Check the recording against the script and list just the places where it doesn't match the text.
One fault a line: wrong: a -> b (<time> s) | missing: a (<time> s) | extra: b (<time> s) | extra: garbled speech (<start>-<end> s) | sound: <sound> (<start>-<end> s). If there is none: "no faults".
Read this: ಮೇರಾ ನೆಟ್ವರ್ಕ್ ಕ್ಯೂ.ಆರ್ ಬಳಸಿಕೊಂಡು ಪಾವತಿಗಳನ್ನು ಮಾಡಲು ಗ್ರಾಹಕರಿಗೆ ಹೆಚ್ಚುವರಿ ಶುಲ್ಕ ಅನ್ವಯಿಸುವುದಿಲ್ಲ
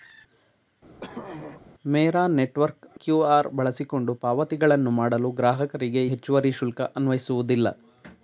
sound: throat clearing (1.0-1.6 s)